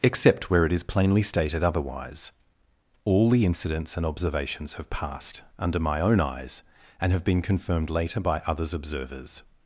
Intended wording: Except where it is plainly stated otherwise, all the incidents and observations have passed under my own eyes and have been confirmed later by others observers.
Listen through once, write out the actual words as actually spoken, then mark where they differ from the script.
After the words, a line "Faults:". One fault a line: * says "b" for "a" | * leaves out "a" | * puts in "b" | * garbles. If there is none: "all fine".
Except where it is plainly stated otherwise, all the incidents and observations have passed under my own eyes and have been confirmed later by others observers.
Faults:
all fine